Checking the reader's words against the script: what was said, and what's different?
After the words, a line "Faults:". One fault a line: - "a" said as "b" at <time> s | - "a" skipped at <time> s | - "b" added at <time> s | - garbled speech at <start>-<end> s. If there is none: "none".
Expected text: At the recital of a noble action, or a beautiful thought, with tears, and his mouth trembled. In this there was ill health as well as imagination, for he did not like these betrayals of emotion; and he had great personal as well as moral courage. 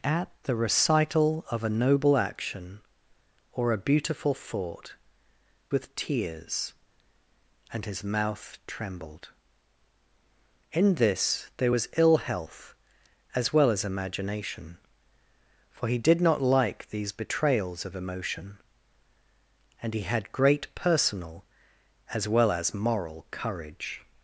At the recital of a noble action, or a beautiful thought, with tears, and his mouth trembled. In this there was ill health as well as imagination, for he did not like these betrayals of emotion; and he had great personal as well as moral courage.
Faults:
none